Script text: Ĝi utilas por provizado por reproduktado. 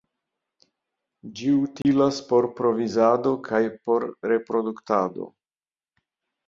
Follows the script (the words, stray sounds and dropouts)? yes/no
no